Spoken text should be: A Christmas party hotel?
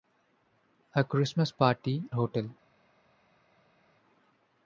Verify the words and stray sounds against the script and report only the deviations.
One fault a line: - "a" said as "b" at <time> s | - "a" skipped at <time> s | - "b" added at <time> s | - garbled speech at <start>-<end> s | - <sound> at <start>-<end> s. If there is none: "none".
none